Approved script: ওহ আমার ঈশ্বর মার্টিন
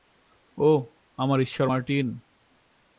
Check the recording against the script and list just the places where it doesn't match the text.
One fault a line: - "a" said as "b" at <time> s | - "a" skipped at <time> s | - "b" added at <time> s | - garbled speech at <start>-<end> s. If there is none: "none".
none